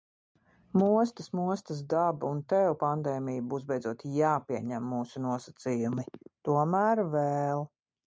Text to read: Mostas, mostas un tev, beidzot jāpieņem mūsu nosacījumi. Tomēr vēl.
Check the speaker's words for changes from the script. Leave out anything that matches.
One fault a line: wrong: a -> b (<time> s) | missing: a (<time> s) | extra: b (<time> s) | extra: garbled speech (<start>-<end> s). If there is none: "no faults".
extra: daba (1.9 s)
extra: pandēmija būs (2.9 s)